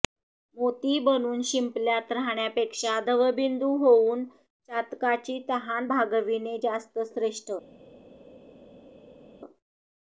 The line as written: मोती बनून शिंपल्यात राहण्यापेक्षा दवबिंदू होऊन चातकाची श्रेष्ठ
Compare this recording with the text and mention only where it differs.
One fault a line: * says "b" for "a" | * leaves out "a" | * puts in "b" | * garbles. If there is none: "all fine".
* puts in "तहान भागविणे जास्त"